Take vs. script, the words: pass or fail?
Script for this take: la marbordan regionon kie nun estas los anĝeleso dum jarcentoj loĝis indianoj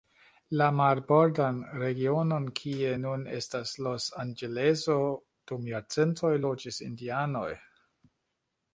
pass